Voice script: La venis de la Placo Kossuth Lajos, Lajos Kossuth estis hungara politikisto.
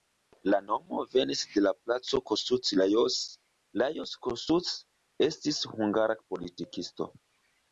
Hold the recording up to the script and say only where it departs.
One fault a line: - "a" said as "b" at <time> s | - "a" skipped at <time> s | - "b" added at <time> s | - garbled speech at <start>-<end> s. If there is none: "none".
- "nomo" added at 0.7 s